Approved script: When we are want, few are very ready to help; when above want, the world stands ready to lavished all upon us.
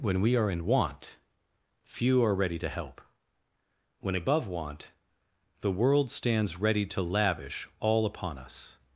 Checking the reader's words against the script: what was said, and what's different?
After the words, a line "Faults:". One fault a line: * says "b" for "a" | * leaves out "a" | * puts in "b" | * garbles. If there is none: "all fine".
When we are in want, few are ready to help; when above want, the world stands ready to lavish all upon us.
Faults:
* puts in "in"
* leaves out "very"
* says "lavish" for "lavished"